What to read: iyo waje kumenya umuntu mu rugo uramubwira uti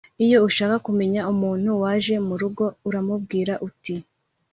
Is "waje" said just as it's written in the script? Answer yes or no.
no